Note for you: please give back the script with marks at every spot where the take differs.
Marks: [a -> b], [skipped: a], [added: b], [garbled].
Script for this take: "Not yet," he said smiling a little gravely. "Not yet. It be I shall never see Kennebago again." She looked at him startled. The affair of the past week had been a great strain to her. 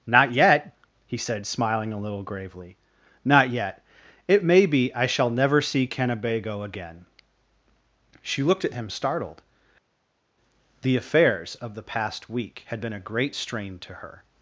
"Not yet," he said smiling a little gravely. "Not yet. It [added: may] be I shall never see Kennebago again." She looked at him startled. The [affair -> affairs] of the past week had been a great strain to her.